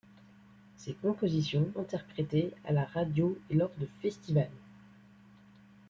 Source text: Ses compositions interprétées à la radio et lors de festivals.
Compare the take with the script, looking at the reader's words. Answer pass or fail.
pass